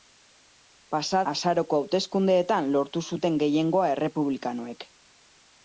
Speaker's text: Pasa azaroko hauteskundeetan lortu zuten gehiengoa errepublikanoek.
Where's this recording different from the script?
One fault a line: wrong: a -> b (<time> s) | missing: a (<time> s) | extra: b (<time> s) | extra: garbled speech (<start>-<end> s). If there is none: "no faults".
no faults